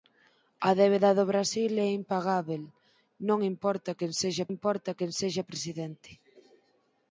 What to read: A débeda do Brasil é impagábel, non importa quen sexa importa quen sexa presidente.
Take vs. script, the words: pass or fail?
pass